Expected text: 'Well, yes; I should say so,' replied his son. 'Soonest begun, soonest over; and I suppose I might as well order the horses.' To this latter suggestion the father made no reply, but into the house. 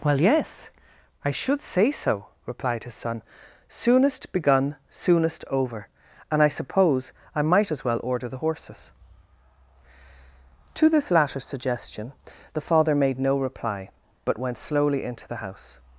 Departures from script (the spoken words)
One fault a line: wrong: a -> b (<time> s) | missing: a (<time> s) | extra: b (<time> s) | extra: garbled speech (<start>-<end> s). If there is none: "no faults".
extra: went slowly (14.4 s)